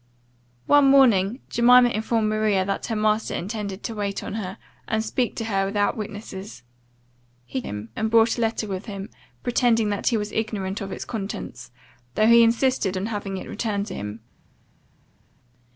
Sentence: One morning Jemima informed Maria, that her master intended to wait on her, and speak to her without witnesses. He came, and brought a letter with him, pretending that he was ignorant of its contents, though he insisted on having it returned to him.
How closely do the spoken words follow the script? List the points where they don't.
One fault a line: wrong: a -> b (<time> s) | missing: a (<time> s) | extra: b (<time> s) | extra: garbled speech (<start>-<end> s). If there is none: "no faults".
wrong: came -> him (7.6 s)